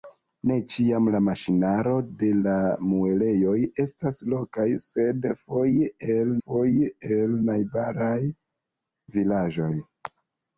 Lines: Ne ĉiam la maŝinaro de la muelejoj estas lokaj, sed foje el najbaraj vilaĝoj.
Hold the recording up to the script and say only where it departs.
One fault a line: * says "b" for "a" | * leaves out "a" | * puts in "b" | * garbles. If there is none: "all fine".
* puts in "foje el"